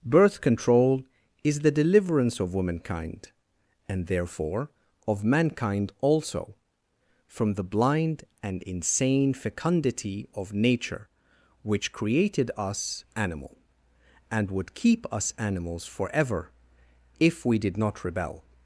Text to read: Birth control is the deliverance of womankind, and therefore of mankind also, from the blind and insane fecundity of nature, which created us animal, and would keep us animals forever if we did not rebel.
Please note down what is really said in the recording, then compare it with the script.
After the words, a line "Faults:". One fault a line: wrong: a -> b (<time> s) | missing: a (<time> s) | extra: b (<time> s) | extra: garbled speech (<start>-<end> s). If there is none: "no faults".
Birth control is the deliverance of womankind, and therefore of mankind also, from the blind and insane fecundity of nature, which created us animal, and would keep us animals forever if we did not rebel.
Faults:
no faults